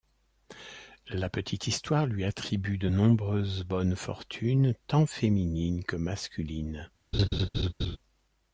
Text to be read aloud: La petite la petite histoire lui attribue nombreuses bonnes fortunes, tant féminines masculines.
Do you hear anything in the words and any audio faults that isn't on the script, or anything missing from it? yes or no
yes